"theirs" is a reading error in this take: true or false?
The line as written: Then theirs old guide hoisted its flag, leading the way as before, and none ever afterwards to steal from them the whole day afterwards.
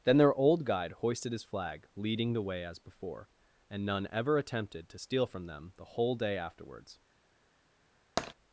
true